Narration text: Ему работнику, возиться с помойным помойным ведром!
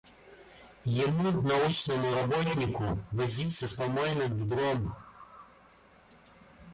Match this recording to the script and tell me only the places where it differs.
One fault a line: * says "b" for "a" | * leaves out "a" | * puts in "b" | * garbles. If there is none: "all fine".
* puts in "научному"
* leaves out "помойным"